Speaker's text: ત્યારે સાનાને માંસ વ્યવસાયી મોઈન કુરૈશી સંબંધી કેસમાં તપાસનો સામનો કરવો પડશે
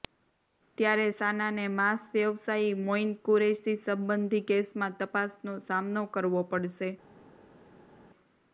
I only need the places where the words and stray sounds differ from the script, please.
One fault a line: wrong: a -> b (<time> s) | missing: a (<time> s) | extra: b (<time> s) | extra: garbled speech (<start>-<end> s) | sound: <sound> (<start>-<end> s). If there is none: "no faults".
no faults